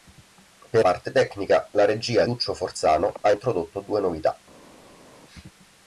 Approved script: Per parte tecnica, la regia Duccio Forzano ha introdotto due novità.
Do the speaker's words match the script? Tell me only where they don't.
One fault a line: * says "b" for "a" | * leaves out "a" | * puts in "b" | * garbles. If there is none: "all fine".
all fine